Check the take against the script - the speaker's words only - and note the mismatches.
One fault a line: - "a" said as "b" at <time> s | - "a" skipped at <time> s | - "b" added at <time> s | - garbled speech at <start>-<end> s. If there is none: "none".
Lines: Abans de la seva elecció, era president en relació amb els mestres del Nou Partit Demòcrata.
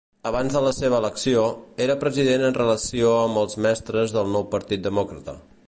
none